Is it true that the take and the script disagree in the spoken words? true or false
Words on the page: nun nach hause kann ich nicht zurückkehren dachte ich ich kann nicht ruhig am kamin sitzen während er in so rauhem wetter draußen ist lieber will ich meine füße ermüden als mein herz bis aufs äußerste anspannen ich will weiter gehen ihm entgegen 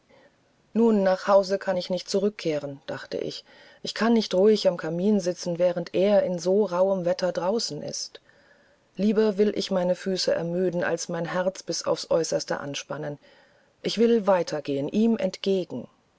false